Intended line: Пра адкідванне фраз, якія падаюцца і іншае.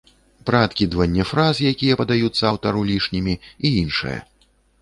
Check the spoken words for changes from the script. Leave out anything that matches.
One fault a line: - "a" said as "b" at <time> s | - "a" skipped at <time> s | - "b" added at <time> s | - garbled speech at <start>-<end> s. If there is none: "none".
- "аўтару лішнімі" added at 2.5 s